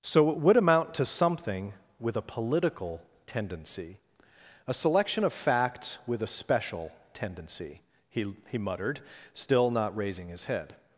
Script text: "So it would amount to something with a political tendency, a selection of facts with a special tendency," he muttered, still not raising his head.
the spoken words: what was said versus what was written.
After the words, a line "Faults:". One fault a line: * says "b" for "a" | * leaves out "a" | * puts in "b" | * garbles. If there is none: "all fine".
"So it would amount to something with a political tendency, a selection of facts with a special tendency," he he muttered, still not raising his head.
Faults:
* puts in "he"